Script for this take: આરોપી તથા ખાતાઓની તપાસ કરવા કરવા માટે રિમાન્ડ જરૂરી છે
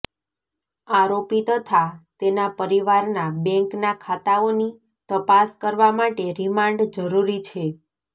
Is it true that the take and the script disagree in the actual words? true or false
true